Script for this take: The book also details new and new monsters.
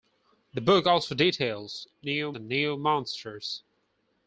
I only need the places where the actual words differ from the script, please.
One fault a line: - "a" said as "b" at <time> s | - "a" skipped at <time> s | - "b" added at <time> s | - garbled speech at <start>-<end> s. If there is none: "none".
none